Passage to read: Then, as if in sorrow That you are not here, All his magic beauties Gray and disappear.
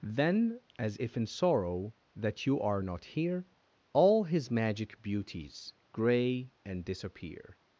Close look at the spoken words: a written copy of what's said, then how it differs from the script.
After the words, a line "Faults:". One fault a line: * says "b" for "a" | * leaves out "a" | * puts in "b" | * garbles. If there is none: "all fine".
Then, as if in sorrow That you are not here, All his magic beauties Gray and disappear.
Faults:
all fine